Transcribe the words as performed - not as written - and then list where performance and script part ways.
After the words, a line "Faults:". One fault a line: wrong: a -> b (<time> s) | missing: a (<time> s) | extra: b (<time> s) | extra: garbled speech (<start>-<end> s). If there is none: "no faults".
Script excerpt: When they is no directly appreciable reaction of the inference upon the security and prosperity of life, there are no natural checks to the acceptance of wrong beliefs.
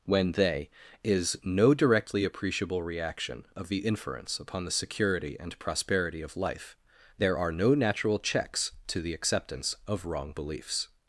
When they is no directly appreciable reaction of the inference upon the security and prosperity of life, there are no natural checks to the acceptance of wrong beliefs.
Faults:
no faults